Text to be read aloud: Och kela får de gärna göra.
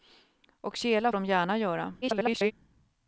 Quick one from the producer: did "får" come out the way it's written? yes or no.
no